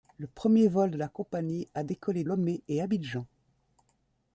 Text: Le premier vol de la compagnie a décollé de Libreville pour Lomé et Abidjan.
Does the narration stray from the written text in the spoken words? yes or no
yes